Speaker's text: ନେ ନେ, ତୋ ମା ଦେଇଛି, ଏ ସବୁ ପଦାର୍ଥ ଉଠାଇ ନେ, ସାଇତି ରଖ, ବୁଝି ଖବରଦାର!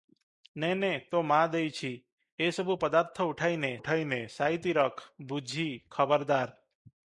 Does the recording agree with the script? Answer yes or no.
no